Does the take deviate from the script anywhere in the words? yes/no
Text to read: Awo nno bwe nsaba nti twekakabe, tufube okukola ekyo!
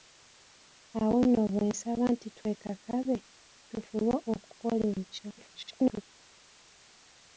yes